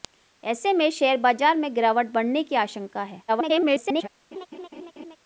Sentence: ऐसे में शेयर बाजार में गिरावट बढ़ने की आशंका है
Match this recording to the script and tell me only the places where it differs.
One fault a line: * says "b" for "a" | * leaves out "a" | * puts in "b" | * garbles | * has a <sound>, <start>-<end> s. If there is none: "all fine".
* garbles
* has a laugh, 4.3-5.2 s